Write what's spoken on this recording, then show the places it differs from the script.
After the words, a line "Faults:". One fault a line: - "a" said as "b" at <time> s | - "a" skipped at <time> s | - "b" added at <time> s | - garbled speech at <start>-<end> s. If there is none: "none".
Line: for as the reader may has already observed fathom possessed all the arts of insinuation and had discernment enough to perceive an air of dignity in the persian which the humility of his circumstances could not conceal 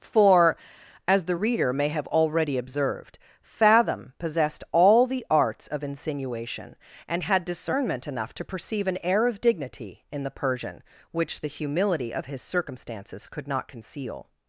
for as the reader may have already observed fathom possessed all the arts of insinuation and had discernment enough to perceive an air of dignity in the persian which the humility of his circumstances could not conceal
Faults:
- "has" said as "have" at 1.9 s